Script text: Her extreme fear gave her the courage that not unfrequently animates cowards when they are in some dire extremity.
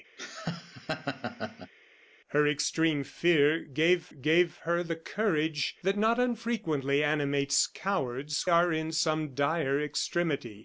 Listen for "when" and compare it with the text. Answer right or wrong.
wrong